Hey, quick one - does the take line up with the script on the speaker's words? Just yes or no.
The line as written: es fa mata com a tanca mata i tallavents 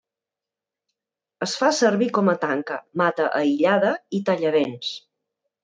no